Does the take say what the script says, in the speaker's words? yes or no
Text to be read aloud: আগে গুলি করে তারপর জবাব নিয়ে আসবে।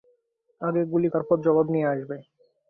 no